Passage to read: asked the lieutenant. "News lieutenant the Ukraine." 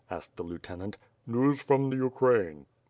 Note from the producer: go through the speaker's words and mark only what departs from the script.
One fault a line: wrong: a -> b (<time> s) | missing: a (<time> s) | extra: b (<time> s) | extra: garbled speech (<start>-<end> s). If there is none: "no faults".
wrong: lieutenant -> from (1.6 s)